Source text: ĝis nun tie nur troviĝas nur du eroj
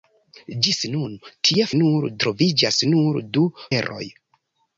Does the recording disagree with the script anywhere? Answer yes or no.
no